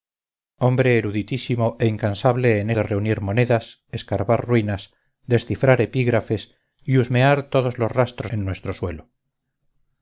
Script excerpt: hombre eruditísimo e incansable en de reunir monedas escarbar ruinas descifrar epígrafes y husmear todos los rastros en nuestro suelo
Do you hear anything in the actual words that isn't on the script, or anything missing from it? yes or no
no